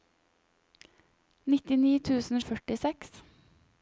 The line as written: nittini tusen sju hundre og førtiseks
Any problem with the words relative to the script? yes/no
yes